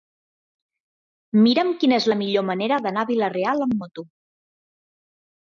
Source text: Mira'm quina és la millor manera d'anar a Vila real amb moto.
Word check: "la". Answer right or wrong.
right